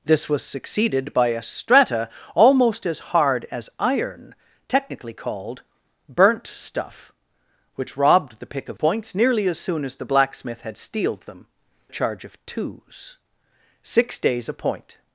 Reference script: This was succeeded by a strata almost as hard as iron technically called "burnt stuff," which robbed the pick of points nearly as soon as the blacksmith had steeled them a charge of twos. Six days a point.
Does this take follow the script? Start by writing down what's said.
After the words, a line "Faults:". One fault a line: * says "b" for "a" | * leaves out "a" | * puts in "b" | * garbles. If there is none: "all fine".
This was succeeded by a strata almost as hard as iron technically called "burnt stuff," which robbed the pick of points nearly as soon as the blacksmith had steeled them a charge of twos. Six days a point.
Faults:
all fine